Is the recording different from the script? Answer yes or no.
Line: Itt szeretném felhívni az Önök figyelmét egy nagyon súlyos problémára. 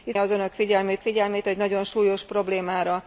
yes